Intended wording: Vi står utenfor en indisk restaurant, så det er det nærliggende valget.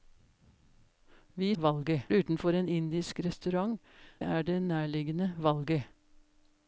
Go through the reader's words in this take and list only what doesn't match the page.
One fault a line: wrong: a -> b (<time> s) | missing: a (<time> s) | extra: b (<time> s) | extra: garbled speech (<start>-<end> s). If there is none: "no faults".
wrong: står -> valget (1.6 s)
missing: så det (3.8 s)